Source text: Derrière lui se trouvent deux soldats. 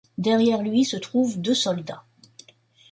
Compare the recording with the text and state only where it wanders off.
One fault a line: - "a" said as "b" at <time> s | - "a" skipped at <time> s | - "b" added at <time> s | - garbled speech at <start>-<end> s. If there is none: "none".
none